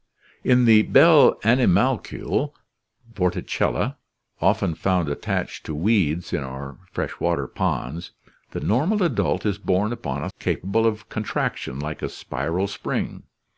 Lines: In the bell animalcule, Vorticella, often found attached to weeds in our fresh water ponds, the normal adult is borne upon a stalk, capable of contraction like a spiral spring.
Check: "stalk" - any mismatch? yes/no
yes